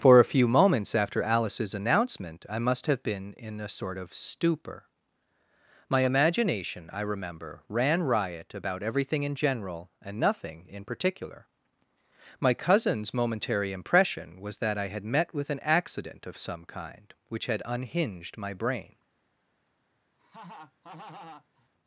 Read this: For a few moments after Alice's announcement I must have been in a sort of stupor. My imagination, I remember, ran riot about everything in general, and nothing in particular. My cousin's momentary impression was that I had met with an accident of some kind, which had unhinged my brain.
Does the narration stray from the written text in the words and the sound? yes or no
yes